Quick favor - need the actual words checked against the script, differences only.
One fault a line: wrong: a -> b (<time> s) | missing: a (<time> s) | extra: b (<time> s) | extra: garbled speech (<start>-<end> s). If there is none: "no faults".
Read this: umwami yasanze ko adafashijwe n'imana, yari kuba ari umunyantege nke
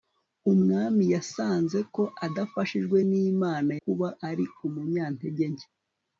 missing: yari (3.7 s)